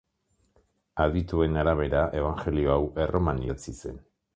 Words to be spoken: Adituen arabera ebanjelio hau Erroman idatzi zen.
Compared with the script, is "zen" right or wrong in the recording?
right